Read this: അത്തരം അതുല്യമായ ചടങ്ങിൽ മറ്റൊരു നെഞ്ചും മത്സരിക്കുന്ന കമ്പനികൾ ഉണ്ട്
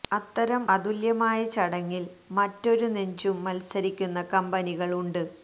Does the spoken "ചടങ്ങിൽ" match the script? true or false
true